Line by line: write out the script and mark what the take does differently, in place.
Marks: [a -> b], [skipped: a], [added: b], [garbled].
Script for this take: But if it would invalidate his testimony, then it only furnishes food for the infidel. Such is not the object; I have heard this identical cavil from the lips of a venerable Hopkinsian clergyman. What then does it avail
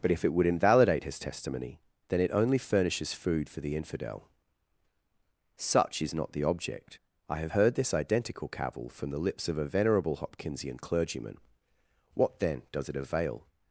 But if it would invalidate his testimony, then it only furnishes food for the infidel. Such is not the object; I have heard this identical cavil from the lips of a venerable Hopkinsian clergyman. What then does it avail